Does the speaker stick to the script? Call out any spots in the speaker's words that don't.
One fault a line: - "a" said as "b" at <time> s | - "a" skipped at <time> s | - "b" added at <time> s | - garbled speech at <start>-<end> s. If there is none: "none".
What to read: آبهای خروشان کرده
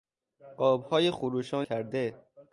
none